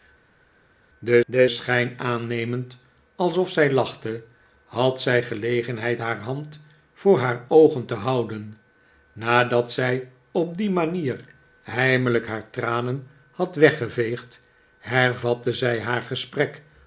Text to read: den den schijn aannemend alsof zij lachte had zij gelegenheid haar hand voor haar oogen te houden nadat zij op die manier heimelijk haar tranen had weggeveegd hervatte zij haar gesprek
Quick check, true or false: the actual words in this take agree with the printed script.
true